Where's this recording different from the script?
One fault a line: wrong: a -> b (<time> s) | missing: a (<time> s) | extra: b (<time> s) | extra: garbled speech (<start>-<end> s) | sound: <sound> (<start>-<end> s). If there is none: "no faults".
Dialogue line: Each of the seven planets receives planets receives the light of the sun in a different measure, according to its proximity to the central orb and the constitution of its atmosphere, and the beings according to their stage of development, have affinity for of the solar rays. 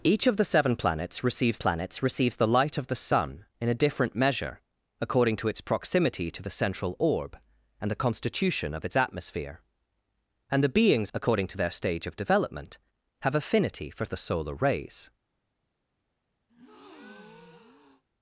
sound: breath (16.5-18.0 s)